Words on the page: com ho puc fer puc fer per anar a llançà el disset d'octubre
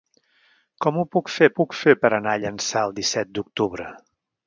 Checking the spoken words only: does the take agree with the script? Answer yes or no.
yes